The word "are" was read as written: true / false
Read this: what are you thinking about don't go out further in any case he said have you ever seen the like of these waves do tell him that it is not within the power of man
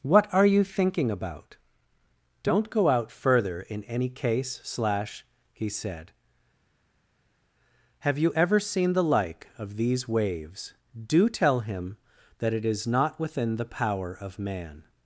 true